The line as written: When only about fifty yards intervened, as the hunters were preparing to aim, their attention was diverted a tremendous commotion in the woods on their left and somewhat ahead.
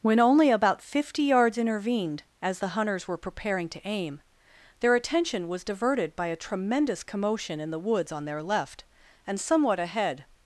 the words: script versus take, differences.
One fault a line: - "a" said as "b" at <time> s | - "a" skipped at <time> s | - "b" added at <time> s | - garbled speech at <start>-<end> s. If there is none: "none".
- "by" added at 6.2 s